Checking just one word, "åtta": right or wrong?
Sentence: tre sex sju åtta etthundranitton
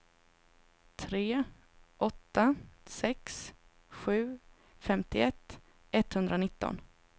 wrong